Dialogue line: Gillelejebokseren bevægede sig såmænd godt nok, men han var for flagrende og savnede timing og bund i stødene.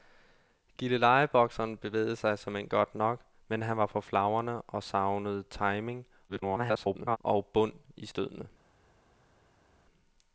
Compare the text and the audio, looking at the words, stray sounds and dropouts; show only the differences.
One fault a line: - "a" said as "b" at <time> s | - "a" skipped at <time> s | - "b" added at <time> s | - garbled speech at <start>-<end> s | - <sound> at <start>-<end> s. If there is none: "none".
- garbled speech at 6.3-7.2 s